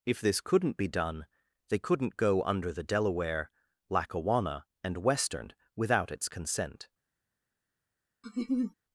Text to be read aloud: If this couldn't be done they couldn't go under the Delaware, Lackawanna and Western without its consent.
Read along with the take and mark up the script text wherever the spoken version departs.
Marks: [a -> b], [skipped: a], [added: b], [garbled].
If this couldn't be done they couldn't go under the Delaware, Lackawanna and Western without its consent.